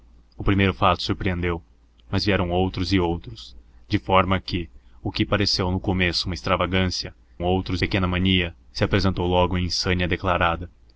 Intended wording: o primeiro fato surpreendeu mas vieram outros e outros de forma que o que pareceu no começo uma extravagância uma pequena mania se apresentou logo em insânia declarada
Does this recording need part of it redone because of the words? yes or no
yes